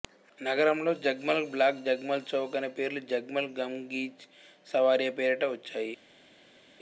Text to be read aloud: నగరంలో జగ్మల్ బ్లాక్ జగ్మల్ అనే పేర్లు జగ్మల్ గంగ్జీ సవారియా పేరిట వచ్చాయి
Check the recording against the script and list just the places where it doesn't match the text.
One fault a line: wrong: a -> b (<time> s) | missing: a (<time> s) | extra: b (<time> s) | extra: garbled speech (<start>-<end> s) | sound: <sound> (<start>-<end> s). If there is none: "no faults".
extra: చౌక్ (2.3 s)